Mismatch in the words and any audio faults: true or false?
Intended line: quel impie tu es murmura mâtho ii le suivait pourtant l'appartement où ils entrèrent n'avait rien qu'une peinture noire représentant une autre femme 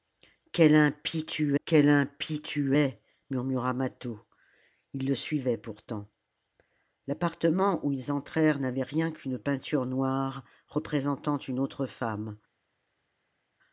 true